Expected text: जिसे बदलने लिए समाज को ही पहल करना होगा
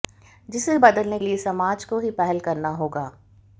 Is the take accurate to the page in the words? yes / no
yes